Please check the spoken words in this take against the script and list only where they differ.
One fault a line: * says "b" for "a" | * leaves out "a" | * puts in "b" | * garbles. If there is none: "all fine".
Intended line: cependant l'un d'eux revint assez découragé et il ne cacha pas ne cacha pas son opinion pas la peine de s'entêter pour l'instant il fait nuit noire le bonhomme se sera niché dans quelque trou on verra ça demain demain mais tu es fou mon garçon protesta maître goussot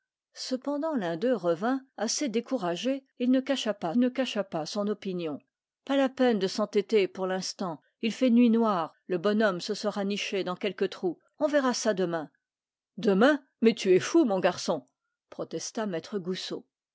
all fine